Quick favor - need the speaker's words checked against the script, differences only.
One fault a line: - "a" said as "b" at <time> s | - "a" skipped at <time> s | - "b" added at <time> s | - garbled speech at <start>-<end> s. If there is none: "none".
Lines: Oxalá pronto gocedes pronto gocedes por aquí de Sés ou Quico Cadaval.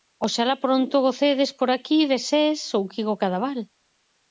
- "pronto gocedes" skipped at 1.5 s